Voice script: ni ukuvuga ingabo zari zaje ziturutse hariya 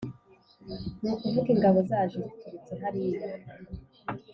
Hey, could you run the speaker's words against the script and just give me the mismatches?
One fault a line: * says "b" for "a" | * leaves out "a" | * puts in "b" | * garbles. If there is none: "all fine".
* leaves out "zari"